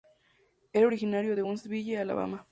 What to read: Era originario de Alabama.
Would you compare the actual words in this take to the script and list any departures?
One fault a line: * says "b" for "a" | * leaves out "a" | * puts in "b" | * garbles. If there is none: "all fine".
* puts in "Huntsville"